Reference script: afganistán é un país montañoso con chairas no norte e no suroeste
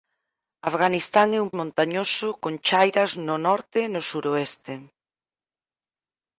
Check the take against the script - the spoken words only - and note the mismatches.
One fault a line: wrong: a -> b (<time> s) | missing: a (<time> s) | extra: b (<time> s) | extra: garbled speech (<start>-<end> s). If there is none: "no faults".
missing: país (1.5 s)